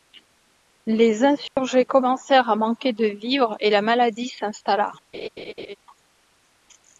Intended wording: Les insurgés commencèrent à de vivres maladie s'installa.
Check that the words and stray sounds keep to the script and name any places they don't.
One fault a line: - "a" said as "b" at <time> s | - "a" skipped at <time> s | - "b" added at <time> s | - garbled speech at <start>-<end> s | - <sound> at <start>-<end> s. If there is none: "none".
- dropout at 1.5-1.6 s
- "manquer" added at 2.5 s
- "et la" added at 3.6 s
- laugh at 5.1-5.8 s